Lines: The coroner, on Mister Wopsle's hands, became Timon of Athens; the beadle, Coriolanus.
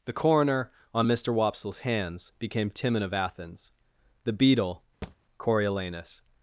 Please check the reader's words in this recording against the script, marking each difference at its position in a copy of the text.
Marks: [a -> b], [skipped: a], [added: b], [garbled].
The coroner, on Mister Wopsle's hands, became Timon of Athens; the beadle, Coriolanus.